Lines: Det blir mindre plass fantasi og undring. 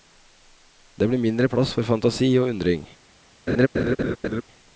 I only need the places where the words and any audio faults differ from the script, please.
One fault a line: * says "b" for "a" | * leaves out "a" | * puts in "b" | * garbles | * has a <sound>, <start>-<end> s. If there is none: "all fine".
* puts in "for"
* has a laugh, 3.5-4.4 s